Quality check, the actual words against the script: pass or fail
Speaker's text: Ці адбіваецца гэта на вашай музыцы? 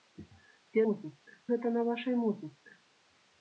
fail